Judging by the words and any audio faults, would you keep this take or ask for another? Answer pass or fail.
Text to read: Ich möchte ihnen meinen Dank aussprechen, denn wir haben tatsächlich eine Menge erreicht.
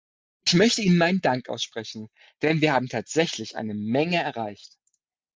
pass